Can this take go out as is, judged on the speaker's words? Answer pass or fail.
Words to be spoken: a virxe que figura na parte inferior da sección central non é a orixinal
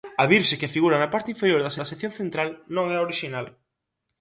fail